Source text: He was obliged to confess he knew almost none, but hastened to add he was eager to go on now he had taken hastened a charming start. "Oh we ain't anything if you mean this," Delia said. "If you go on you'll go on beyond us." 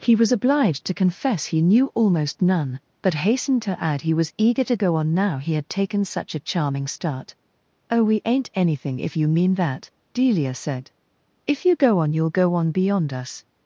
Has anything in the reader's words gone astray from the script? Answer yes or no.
yes